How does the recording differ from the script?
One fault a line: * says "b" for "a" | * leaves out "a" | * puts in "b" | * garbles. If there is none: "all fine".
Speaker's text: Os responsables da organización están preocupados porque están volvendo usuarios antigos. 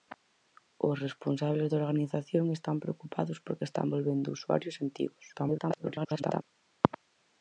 * garbles